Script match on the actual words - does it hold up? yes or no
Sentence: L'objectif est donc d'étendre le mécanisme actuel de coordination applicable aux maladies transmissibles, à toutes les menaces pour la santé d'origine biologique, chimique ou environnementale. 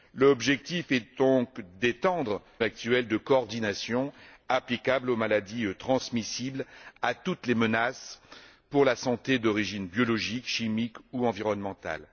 no